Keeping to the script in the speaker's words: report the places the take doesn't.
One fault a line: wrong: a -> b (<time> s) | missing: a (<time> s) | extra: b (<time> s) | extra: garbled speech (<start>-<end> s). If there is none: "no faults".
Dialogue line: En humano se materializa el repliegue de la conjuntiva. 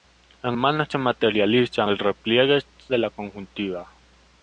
no faults